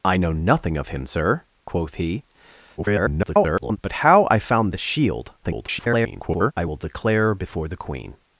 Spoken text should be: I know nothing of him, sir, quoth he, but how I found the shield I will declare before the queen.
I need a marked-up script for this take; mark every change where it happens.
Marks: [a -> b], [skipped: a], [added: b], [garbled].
I know nothing of him, sir, quoth he, [garbled] but how I found the shield [garbled] I will declare before the queen.